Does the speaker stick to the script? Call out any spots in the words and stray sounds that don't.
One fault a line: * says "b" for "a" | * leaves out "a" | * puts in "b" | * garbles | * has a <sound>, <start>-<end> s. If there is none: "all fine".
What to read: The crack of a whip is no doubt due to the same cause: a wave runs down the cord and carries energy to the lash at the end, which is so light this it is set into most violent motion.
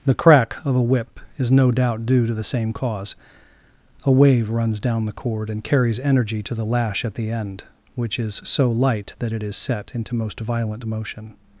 * says "that" for "this"